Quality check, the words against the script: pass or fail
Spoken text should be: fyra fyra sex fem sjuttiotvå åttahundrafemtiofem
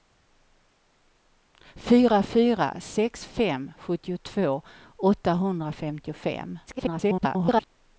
fail